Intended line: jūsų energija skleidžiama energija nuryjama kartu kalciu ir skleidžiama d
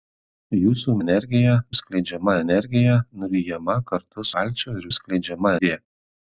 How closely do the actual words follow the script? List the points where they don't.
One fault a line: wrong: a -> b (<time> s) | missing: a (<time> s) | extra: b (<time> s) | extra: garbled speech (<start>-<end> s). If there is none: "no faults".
no faults